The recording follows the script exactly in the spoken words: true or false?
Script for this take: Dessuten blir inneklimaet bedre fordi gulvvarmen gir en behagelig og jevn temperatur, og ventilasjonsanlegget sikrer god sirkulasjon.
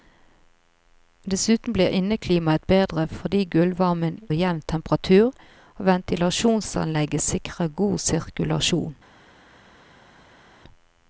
false